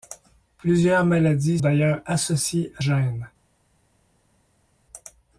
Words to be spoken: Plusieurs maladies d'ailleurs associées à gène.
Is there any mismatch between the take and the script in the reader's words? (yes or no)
no